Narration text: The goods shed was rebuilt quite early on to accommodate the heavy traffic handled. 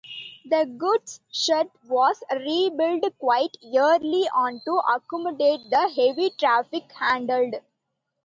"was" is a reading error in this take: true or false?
false